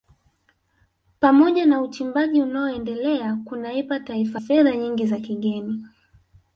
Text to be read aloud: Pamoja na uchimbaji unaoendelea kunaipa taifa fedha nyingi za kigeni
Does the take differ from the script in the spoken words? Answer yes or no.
no